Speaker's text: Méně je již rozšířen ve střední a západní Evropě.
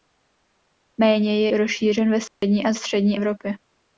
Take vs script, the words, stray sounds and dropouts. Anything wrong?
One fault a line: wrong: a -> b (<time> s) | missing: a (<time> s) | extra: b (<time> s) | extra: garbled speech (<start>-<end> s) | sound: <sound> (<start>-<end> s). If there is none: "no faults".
missing: již (1.5 s)
sound: dropout (2.3-2.4 s)
wrong: západní -> střední (2.7 s)